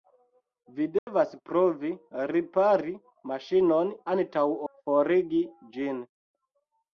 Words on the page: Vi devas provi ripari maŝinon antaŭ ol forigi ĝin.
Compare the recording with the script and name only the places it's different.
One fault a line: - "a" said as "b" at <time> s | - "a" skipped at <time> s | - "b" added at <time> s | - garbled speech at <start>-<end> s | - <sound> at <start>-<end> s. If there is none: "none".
- dropout at 1.0-1.1 s
- "ol" skipped at 4.5 s